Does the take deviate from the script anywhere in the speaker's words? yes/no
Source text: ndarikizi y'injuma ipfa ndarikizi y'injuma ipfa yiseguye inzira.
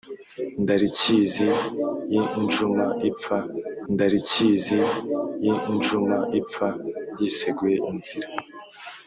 no